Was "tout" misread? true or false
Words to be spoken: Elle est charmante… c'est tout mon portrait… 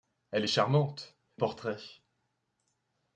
true